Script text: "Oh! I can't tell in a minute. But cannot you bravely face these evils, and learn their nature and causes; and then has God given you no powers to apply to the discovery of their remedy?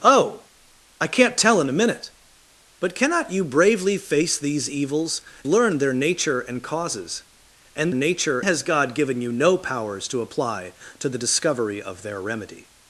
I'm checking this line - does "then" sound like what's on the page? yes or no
no